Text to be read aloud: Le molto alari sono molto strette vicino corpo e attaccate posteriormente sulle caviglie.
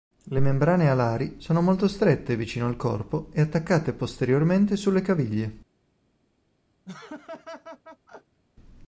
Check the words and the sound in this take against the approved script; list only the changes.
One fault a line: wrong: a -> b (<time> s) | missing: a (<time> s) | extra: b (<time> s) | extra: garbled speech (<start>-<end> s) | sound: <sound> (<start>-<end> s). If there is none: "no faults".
wrong: molto -> membrane (0.4 s)
extra: al (2.6 s)
sound: laugh (6.8-8.4 s)